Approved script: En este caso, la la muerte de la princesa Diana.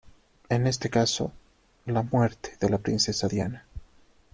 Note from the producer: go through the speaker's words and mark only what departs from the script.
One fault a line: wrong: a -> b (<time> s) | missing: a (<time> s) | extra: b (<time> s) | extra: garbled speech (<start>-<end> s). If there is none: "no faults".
missing: la (2.0 s)